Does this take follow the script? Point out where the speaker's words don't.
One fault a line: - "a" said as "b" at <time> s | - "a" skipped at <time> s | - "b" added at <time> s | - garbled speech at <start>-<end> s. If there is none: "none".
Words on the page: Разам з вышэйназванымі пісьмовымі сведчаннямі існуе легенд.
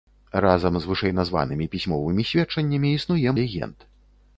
none